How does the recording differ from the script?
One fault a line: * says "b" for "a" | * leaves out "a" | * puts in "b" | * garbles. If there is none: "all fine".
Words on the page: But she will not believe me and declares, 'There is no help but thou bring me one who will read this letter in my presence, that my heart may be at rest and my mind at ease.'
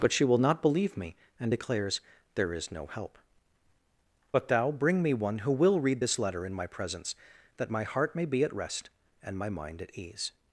all fine